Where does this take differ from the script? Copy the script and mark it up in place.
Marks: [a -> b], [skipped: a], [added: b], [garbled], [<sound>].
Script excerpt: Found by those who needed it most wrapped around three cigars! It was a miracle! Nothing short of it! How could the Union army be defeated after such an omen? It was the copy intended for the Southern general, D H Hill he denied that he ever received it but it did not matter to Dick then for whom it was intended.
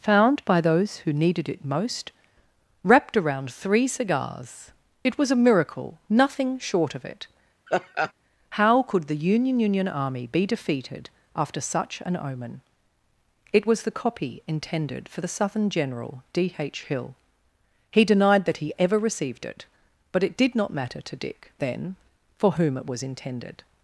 Found by those who needed it most wrapped around three cigars! It was a miracle! Nothing short of it! [laugh] How could the Union [added: Union] army be defeated after such an omen? It was the copy intended for the Southern general, D H Hill he denied that he ever received it but it did not matter to Dick then for whom it was intended.